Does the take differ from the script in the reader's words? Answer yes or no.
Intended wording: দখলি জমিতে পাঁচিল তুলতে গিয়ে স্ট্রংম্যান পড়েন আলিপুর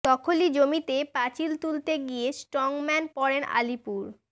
no